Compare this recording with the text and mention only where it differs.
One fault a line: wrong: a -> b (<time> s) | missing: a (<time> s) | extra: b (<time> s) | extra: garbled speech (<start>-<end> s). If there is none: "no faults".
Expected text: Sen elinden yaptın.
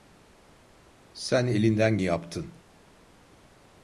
no faults